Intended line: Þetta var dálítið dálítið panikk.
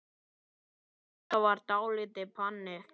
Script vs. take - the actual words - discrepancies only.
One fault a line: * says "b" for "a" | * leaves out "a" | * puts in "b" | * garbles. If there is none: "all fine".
* leaves out "dálítið"